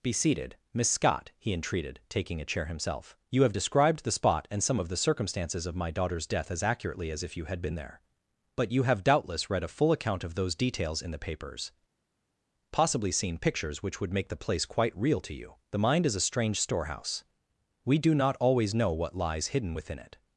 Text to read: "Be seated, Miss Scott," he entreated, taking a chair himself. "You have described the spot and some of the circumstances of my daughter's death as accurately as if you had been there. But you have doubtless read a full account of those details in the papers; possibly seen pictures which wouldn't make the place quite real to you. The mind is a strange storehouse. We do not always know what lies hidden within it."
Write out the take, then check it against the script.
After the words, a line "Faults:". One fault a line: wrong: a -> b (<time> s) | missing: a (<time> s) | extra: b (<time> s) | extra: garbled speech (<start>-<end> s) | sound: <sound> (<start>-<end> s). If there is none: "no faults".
"Be seated, Miss Scott," he entreated, taking a chair himself. "You have described the spot and some of the circumstances of my daughter's death as accurately as if you had been there. But you have doubtless read a full account of those details in the papers; possibly seen pictures which would make the place quite real to you. The mind is a strange storehouse. We do not always know what lies hidden within it."
Faults:
wrong: wouldn't -> would (14.0 s)